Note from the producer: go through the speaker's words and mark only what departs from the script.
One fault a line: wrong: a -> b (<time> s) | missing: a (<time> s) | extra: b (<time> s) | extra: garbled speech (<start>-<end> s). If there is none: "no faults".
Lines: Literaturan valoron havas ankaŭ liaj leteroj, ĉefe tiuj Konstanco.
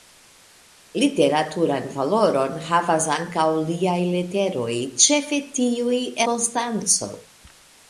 no faults